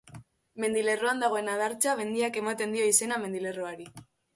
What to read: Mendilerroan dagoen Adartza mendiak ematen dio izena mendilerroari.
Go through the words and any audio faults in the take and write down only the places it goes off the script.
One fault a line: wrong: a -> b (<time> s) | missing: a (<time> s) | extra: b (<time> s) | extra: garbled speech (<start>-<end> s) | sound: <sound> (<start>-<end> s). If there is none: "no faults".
no faults